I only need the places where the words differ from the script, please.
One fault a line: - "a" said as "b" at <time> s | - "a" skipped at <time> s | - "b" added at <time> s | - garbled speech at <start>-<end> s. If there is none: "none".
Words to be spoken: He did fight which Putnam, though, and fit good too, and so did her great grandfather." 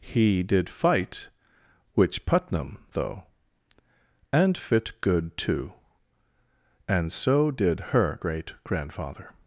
none